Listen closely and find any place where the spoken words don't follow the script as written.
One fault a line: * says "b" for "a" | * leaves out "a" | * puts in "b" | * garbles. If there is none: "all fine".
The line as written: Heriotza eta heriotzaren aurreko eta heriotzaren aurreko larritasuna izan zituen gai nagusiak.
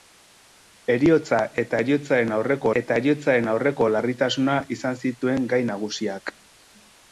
all fine